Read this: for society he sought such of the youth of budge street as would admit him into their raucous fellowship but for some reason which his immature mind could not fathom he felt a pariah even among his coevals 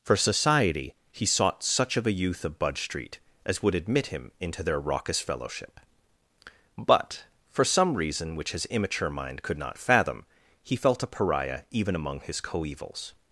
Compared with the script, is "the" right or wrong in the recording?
wrong